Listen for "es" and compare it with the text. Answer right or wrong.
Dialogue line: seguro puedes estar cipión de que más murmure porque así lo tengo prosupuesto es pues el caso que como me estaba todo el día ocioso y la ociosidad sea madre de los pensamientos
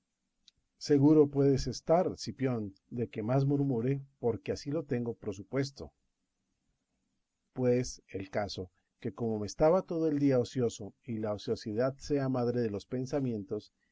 wrong